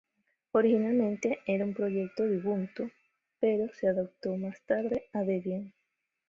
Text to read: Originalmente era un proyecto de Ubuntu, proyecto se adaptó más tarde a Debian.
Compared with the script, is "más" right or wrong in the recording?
right